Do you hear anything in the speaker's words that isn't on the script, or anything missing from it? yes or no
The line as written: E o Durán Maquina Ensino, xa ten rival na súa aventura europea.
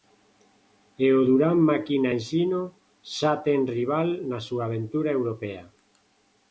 no